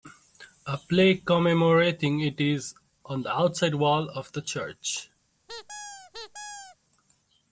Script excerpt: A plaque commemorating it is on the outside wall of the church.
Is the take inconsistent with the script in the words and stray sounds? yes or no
yes